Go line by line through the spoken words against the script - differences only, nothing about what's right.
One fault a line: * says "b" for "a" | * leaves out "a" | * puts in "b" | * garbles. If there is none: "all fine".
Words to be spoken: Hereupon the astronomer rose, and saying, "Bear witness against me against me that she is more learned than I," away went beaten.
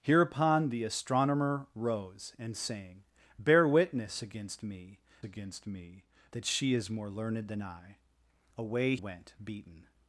all fine